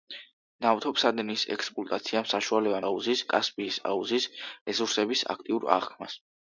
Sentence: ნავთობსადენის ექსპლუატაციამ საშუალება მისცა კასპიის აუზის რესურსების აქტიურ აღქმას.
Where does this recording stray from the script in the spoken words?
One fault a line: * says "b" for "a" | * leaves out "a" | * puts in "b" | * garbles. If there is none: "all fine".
* says "აუზის" for "მისცა"